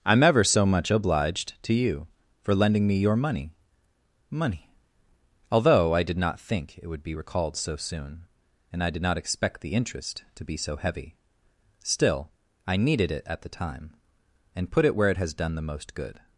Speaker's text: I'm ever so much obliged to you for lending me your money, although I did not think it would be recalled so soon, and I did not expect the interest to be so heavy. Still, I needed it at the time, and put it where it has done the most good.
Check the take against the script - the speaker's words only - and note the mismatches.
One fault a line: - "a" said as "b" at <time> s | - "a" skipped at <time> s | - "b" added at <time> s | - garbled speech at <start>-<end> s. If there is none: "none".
- "money" added at 4.3 s